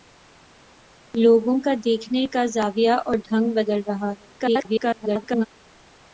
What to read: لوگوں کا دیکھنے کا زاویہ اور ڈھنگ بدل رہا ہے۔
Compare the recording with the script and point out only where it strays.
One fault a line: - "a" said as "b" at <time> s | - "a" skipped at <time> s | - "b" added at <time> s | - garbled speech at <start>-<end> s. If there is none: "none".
- garbled speech at 4.4-5.5 s